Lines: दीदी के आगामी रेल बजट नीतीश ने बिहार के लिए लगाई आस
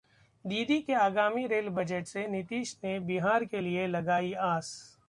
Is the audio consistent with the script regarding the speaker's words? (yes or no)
no